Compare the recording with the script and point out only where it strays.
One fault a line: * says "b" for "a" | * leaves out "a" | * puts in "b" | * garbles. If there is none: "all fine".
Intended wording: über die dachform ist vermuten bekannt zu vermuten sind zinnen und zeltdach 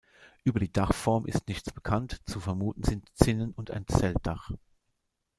* says "nichts" for "vermuten"
* puts in "ein"